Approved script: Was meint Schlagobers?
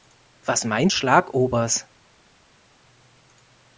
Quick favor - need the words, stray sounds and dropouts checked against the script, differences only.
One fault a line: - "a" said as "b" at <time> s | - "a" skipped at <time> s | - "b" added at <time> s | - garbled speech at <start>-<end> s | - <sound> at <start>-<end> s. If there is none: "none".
none